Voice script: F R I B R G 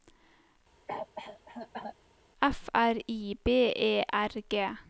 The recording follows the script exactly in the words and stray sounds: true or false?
false